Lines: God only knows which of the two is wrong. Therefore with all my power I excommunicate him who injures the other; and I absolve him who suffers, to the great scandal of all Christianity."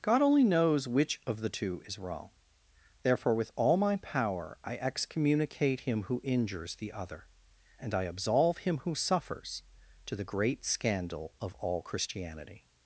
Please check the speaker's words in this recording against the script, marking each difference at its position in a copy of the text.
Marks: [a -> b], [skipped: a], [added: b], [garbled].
God only knows which of the two is wrong. Therefore with all my power I excommunicate him who injures the other; and I absolve him who suffers, to the great scandal of all Christianity."